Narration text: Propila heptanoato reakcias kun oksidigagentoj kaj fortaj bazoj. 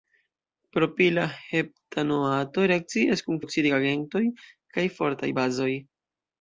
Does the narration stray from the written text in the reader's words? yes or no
no